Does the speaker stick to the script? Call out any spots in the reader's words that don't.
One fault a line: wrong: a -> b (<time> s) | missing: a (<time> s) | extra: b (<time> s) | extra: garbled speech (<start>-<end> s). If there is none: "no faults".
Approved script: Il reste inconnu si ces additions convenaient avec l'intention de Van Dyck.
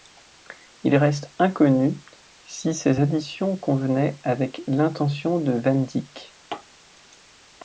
no faults